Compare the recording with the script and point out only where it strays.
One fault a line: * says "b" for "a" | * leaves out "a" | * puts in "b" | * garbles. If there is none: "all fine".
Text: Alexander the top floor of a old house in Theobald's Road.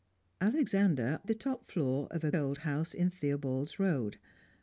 all fine